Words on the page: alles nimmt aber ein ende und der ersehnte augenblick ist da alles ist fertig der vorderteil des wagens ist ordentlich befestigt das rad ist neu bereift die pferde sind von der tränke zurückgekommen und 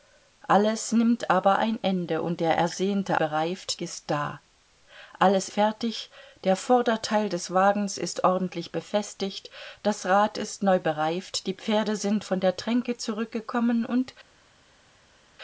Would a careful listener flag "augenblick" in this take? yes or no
yes